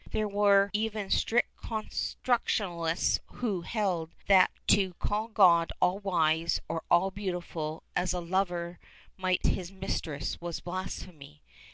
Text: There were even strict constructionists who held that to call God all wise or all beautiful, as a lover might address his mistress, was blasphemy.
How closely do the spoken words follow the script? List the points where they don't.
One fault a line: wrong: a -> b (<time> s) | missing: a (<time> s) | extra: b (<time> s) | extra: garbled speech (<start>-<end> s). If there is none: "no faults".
missing: address (9.4 s)